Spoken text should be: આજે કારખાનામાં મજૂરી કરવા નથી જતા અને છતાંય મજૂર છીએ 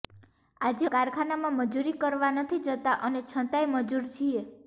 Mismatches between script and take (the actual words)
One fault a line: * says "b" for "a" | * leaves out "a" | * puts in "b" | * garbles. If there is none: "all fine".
all fine